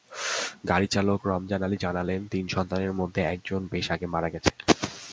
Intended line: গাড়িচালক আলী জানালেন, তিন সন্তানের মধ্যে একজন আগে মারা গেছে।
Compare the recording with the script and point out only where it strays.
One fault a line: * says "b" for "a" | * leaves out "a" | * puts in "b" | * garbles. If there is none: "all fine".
* puts in "রমজান"
* puts in "বেশ"